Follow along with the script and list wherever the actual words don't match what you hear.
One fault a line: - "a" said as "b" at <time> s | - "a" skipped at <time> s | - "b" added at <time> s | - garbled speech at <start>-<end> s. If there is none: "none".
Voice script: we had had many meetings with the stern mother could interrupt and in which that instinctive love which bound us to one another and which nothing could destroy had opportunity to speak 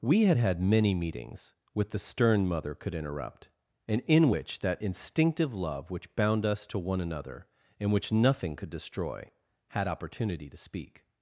none